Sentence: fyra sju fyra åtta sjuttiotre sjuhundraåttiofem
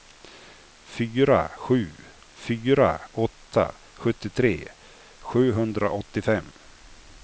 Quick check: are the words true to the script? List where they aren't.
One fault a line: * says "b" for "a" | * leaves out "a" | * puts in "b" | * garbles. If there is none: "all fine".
all fine